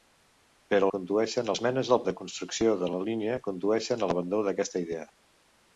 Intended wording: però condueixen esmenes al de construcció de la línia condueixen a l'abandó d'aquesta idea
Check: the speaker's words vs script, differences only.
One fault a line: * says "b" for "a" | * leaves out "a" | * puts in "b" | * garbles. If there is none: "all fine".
all fine